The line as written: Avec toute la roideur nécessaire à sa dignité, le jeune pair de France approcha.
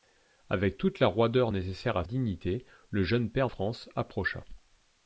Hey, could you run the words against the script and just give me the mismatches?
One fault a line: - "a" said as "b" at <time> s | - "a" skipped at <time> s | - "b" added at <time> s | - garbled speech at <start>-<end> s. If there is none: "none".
- "sa" skipped at 2.1 s
- "de" skipped at 3.5 s